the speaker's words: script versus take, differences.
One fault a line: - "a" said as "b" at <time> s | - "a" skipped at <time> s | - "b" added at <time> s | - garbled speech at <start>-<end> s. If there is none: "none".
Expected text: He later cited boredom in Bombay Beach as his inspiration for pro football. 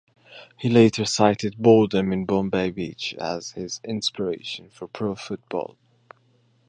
none